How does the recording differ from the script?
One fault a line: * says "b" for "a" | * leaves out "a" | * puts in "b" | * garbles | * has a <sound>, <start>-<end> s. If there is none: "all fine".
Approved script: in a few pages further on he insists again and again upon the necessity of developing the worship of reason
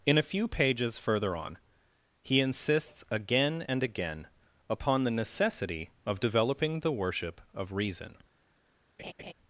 * has a laugh, 9.0-9.3 s